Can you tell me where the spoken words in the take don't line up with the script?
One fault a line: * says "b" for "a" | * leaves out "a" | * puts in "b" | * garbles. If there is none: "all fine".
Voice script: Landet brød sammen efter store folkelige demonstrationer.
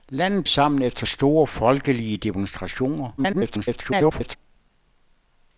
* leaves out "brød"
* garbles